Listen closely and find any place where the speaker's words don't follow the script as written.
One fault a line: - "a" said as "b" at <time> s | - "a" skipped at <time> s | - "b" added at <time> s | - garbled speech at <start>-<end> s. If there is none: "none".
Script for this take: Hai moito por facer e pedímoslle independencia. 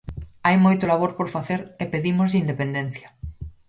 - "labor" added at 0.9 s